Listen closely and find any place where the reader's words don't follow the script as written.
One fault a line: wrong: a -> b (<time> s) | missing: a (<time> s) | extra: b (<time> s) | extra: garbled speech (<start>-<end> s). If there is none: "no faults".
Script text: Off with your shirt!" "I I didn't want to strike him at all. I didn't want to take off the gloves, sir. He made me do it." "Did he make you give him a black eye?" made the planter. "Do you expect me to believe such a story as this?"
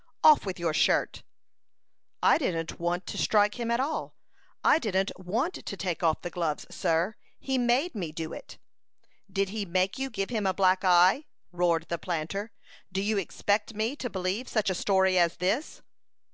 missing: I (2.4 s)
wrong: made -> roared (11.5 s)